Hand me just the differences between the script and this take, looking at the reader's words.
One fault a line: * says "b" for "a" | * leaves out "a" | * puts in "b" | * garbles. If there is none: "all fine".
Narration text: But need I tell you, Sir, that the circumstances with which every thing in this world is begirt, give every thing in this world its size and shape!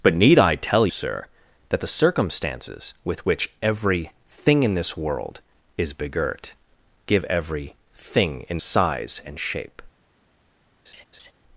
* leaves out "you"
* leaves out "this world its"